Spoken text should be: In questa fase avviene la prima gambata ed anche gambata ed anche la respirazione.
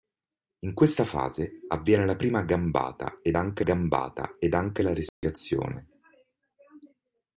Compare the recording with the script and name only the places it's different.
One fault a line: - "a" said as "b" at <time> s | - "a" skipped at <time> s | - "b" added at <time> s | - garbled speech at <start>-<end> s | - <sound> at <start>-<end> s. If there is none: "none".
- dropout at 5.1-5.2 s